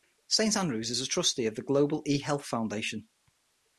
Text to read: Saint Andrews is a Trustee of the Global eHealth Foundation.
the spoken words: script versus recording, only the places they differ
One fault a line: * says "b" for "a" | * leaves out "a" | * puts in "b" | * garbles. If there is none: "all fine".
all fine